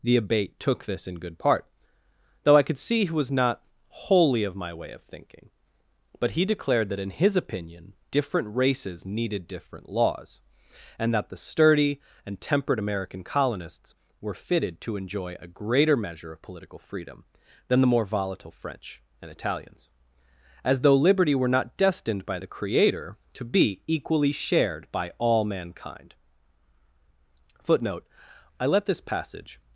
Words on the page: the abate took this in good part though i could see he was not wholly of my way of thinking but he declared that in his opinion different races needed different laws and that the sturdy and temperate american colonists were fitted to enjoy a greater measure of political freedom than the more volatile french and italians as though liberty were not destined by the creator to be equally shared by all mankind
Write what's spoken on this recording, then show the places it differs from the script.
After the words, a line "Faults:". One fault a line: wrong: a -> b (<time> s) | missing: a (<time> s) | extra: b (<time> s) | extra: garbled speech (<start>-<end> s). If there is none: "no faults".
the abate took this in good part though i could see he was not wholly of my way of thinking but he declared that in his opinion different races needed different laws and that the sturdy and temperate american colonists were fitted to enjoy a greater measure of political freedom than the more volatile french and italians as though liberty were not destined by the creator to be equally shared by all mankind footnote i let this passage
Faults:
extra: footnote i let this passage (27.6 s)